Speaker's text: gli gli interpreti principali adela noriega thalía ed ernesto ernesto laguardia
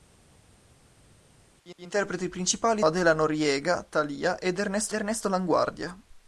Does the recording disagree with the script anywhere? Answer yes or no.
no